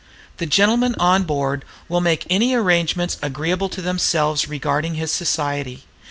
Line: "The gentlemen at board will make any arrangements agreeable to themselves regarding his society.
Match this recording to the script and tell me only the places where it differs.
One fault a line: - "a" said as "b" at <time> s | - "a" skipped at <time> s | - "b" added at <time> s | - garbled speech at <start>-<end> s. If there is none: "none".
- "at" said as "on" at 1.0 s